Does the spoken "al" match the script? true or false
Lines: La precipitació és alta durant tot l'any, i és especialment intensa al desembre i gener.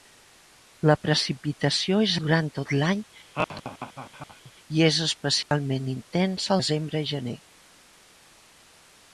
false